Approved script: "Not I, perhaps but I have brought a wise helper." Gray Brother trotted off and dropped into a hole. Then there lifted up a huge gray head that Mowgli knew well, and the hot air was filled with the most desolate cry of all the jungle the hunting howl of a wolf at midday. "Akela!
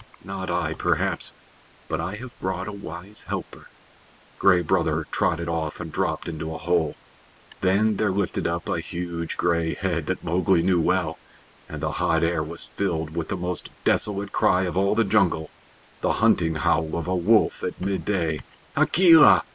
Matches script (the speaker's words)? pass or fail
pass